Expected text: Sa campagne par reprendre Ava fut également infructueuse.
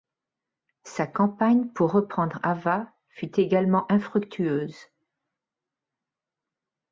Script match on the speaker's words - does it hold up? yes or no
no